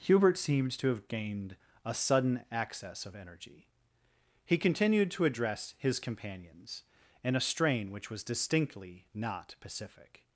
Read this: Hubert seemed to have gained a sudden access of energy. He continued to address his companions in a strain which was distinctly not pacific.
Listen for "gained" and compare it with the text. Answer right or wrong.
right